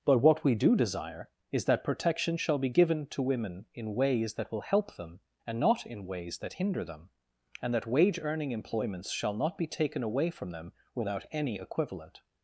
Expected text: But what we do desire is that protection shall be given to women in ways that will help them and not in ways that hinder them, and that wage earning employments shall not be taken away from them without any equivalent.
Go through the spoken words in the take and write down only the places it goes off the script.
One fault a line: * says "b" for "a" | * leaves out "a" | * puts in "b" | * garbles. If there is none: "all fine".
all fine